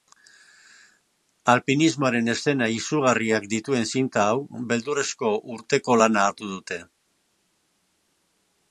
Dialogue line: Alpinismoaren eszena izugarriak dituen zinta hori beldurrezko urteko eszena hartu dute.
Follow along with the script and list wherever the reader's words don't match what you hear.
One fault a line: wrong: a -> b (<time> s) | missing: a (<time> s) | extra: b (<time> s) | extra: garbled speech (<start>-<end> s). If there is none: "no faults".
wrong: hori -> hau (4.3 s)
wrong: eszena -> lana (6.0 s)